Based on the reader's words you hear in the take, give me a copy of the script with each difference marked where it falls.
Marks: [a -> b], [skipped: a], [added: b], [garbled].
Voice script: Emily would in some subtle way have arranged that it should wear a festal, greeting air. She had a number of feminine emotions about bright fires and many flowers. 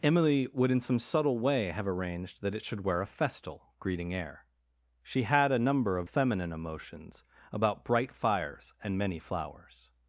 Emily would in some subtle way have arranged that it should wear a festal, greeting air. She had a number of feminine emotions about bright fires and many flowers.